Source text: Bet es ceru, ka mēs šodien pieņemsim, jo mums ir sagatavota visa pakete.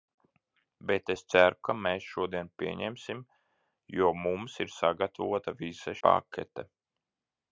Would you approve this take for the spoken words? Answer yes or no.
yes